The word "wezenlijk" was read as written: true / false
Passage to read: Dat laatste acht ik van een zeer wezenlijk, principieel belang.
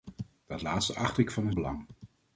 false